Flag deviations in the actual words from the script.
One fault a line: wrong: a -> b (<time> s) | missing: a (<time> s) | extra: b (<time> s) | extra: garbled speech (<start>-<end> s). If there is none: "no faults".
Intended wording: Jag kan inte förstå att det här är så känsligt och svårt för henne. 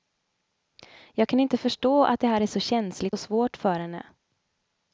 no faults